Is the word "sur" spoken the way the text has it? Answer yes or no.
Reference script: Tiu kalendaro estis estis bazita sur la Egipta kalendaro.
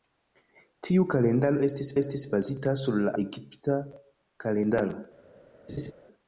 yes